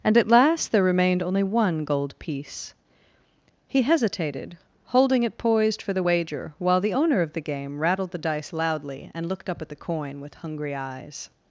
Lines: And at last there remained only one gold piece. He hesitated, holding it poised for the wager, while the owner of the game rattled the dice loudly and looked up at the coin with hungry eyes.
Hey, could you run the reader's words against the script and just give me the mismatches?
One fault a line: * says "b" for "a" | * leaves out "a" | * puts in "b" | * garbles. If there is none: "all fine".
all fine